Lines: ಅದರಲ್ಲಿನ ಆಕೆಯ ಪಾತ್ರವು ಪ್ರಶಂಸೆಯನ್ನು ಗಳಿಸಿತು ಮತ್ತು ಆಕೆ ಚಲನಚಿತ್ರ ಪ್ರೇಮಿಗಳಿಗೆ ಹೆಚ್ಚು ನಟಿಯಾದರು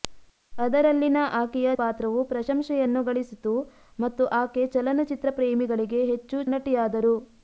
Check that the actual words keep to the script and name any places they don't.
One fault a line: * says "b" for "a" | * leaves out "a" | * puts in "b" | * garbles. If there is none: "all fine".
all fine